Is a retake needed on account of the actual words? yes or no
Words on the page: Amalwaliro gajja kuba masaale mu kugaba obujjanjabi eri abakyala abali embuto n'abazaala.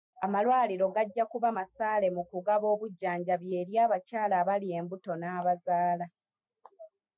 no